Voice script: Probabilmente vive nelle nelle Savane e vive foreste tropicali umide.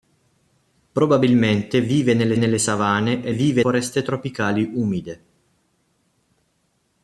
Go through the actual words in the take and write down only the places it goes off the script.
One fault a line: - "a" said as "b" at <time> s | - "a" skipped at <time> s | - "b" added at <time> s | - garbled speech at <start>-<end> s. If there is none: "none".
none